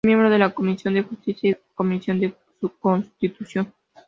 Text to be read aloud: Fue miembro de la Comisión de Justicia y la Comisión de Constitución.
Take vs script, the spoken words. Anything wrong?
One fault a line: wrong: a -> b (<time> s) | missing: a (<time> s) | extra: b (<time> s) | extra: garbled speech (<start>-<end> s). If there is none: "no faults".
no faults